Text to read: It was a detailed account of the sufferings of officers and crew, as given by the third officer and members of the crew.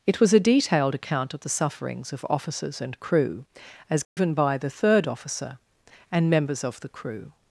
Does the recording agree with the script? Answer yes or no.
yes